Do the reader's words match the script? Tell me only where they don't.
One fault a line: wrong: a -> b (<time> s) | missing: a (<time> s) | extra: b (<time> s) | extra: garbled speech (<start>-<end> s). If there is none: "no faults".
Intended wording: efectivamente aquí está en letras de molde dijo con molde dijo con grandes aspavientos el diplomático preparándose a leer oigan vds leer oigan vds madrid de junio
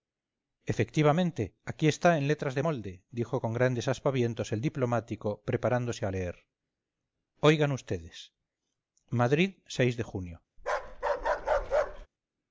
missing: molde dijo con (3.5 s)
missing: leer oigan vds (8.3 s)